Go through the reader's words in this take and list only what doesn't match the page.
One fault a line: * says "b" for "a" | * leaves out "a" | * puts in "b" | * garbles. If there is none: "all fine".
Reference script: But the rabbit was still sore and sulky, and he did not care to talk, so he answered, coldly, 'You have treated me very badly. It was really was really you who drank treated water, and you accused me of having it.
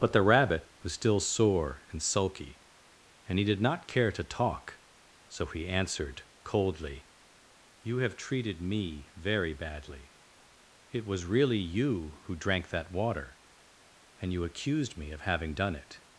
* leaves out "was really"
* says "that" for "treated"
* puts in "done"